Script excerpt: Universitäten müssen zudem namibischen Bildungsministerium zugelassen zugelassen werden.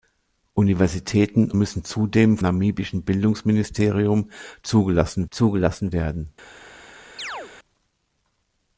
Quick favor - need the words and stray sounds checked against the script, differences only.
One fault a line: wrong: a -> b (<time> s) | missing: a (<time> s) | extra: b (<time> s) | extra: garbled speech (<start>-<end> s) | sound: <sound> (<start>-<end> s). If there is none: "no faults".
sound: chirp (7.2-7.5 s)